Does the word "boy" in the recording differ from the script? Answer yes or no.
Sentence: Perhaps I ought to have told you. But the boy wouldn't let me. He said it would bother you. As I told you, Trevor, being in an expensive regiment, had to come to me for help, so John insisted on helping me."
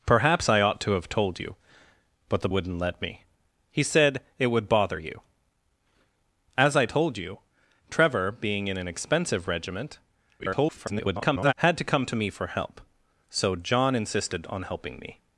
yes